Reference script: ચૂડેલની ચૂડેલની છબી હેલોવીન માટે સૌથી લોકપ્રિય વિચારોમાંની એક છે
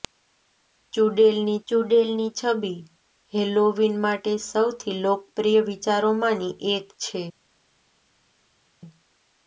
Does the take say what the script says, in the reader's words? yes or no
yes